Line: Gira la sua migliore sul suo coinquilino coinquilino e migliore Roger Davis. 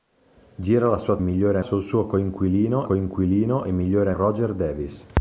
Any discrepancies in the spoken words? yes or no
no